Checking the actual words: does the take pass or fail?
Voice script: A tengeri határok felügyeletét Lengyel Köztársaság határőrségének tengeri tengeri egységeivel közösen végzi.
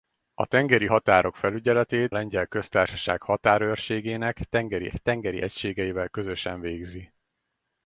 pass